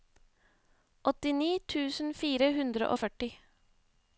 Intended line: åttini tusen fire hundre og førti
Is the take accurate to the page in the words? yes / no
yes